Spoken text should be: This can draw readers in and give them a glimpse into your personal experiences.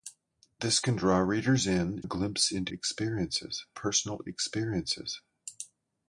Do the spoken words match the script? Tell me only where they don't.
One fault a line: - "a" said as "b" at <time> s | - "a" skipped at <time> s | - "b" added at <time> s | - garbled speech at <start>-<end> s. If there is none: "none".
- "and give them" skipped at 2.0 s
- "your" said as "experiences" at 2.7 s